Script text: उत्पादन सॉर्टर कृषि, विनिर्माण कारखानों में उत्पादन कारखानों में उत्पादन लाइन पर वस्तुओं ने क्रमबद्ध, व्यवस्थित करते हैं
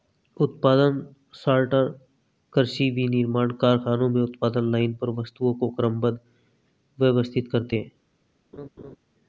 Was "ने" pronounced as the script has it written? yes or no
no